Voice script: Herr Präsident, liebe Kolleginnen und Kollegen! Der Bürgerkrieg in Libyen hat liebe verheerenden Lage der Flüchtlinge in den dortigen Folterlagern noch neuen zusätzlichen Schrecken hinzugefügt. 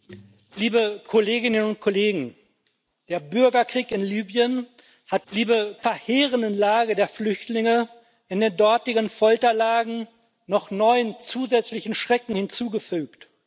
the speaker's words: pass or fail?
pass